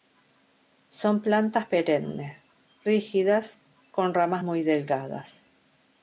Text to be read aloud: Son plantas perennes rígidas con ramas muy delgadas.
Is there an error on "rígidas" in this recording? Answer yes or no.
no